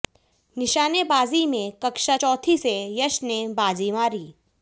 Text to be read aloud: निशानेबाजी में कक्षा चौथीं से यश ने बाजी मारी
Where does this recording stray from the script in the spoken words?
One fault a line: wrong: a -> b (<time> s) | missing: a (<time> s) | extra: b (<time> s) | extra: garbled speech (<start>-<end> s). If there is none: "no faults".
no faults